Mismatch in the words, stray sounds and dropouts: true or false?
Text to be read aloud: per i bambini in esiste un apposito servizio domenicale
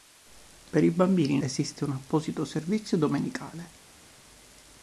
false